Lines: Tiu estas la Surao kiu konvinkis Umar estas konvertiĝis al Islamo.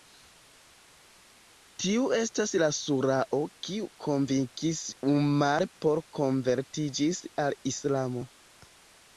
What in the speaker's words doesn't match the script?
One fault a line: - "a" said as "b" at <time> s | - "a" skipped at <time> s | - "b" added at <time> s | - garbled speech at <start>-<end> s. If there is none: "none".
- "estas" said as "por" at 5.9 s